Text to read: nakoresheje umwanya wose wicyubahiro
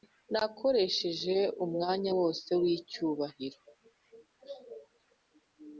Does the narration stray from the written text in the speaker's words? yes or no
no